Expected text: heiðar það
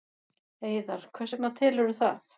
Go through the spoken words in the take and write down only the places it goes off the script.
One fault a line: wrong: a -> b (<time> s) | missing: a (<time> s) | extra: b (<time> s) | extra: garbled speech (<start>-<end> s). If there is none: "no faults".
extra: hvers vegna telurðu (1.2 s)